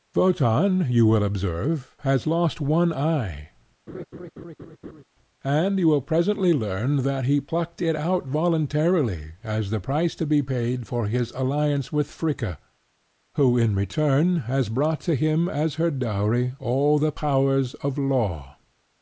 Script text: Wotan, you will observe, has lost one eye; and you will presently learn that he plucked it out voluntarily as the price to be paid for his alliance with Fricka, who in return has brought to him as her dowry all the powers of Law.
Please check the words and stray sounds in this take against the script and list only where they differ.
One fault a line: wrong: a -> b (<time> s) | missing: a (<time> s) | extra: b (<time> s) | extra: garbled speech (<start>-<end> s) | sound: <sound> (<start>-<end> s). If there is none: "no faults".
sound: laugh (3.9-5.0 s)